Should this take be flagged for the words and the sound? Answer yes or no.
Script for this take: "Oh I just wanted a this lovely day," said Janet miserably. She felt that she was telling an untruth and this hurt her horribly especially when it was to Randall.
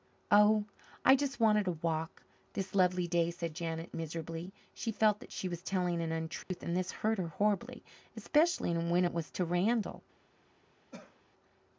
yes